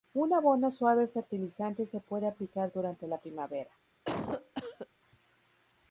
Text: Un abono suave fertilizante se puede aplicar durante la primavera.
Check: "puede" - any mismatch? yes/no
no